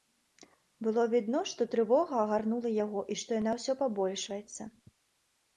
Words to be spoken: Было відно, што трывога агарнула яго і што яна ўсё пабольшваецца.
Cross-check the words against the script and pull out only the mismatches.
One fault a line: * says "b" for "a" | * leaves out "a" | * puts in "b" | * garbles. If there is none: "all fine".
all fine